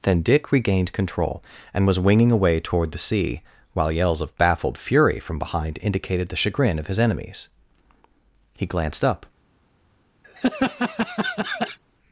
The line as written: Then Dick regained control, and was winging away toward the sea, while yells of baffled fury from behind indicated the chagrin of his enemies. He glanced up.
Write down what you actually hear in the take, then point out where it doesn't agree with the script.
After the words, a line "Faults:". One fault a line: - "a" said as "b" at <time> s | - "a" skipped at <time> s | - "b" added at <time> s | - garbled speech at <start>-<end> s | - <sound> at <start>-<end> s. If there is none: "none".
Then Dick regained control, and was winging away toward the sea, while yells of baffled fury from behind indicated the chagrin of his enemies. He glanced up.
Faults:
- laugh at 10.2-11.8 s